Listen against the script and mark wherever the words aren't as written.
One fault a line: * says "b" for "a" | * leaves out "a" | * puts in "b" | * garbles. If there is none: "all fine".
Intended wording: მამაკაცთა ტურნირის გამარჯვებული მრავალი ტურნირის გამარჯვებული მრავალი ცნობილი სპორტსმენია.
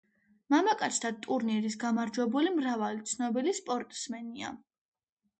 * leaves out "ტურნირის გამარჯვებული მრავალი"